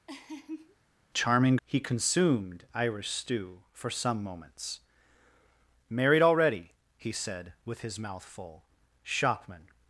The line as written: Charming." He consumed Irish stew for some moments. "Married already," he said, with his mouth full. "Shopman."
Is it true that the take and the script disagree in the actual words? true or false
false